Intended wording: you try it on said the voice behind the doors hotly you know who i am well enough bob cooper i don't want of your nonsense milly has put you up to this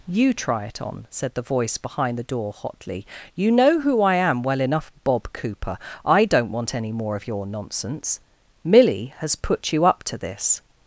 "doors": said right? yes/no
no